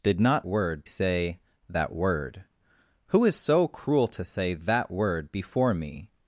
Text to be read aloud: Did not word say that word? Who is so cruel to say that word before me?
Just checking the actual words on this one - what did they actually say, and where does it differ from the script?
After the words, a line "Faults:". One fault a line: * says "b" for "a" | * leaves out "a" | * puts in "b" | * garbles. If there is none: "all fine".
Did not word say that word? Who is so cruel to say that word before me?
Faults:
all fine